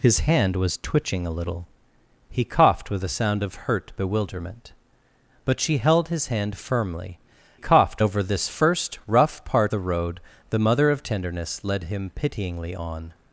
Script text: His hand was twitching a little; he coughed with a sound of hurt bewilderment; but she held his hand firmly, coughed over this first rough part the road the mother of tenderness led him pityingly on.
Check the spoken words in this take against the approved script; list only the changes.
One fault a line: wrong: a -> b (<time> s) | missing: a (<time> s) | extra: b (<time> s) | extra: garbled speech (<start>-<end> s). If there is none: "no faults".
no faults